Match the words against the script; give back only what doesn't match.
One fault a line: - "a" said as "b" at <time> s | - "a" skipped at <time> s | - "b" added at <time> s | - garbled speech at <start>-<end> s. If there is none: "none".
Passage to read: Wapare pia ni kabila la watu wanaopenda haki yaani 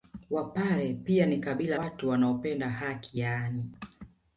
- "la" skipped at 1.8 s